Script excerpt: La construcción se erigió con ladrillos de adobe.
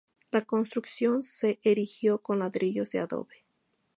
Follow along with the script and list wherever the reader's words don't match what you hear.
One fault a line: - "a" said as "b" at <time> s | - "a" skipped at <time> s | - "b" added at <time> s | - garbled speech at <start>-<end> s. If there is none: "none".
none